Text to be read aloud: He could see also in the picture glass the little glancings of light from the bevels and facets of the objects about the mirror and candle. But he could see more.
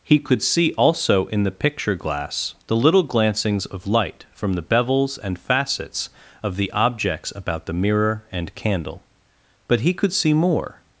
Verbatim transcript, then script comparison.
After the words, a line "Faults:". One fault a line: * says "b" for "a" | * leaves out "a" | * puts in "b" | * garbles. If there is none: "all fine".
He could see also in the picture glass the little glancings of light from the bevels and facets of the objects about the mirror and candle. But he could see more.
Faults:
all fine